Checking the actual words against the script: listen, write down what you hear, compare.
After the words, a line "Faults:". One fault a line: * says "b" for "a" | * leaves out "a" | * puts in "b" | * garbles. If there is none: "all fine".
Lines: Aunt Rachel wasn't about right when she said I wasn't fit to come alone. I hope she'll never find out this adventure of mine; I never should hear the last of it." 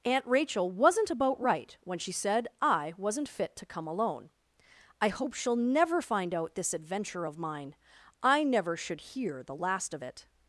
Aunt Rachel wasn't about right when she said I wasn't fit to come alone. I hope she'll never find out this adventure of mine; I never should hear the last of it."
Faults:
all fine